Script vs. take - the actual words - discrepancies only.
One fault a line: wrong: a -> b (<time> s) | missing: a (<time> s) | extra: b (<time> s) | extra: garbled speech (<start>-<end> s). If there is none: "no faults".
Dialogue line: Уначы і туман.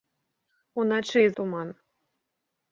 no faults